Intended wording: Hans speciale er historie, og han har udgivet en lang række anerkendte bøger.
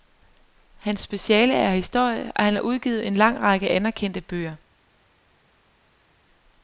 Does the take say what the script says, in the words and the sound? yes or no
yes